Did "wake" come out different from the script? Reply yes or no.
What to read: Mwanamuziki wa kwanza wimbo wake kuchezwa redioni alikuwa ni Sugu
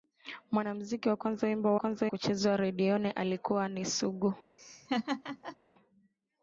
yes